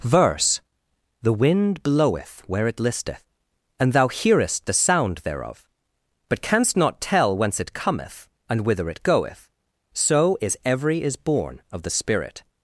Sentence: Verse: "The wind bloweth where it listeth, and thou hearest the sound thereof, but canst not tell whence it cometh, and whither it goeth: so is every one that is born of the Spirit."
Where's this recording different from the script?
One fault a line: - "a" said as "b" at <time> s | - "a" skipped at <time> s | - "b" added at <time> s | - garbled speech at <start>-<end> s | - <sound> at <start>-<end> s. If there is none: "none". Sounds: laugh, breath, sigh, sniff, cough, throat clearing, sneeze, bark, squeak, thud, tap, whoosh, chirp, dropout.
- "one that" skipped at 11.0 s